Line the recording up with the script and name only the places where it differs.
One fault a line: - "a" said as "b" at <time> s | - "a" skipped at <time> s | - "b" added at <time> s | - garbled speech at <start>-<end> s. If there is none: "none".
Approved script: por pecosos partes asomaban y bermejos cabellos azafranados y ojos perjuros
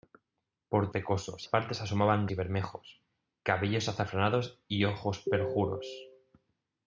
none